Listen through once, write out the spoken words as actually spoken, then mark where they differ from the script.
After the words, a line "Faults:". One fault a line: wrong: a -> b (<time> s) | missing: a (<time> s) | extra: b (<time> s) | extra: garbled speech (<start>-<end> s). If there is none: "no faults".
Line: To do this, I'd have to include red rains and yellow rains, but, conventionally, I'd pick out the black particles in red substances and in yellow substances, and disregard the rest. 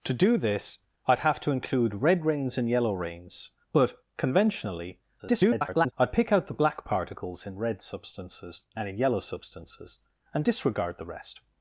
To do this, I'd have to include red rains and yellow rains, but, conventionally, [garbled] I'd pick out the black particles in red substances and in yellow substances, and disregard the rest.
Faults:
extra: garbled speech (5.2-5.9 s)